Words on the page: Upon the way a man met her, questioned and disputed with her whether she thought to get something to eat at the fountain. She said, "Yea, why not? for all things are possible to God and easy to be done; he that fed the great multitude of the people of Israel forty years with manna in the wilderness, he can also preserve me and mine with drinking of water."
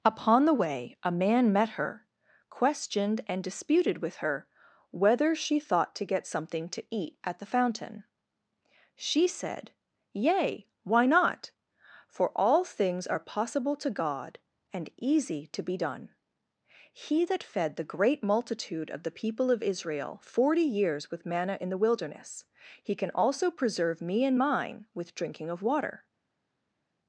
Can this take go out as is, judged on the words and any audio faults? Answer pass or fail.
pass